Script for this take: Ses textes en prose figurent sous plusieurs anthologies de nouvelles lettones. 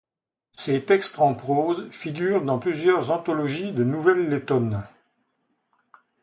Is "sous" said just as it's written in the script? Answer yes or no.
no